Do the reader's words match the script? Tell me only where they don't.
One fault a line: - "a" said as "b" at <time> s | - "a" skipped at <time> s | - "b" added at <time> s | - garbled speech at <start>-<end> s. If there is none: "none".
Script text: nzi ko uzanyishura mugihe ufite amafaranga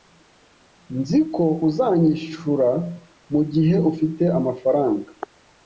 none